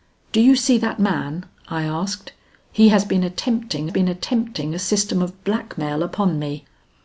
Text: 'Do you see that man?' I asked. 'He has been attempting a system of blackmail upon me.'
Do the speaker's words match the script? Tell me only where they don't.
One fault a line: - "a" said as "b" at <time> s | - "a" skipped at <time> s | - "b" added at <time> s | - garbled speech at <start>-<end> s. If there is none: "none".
- "been attempting" added at 3.9 s